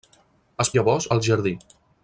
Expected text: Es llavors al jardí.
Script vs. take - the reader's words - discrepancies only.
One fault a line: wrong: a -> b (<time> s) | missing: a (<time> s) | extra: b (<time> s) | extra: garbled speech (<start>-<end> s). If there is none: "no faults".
no faults